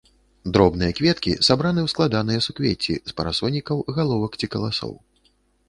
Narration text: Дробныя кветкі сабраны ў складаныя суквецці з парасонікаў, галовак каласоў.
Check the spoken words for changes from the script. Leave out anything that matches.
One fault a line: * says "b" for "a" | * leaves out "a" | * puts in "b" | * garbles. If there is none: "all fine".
* puts in "ці"